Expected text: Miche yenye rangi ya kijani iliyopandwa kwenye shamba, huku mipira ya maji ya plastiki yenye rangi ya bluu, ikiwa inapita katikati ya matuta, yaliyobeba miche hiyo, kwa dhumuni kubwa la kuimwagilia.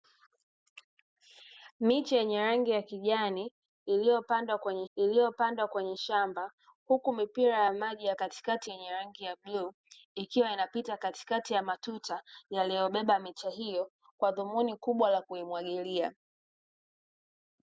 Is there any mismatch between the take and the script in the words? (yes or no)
yes